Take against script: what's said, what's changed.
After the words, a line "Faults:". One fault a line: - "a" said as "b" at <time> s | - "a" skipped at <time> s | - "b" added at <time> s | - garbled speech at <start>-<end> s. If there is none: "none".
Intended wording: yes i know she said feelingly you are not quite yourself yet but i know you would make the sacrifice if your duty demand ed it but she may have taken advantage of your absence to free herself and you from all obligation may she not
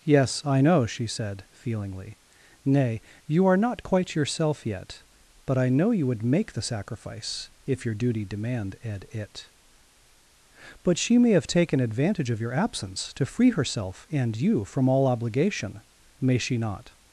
yes i know she said feelingly nay you are not quite yourself yet but i know you would make the sacrifice if your duty demand ed it but she may have taken advantage of your absence to free herself and you from all obligation may she not
Faults:
- "nay" added at 2.6 s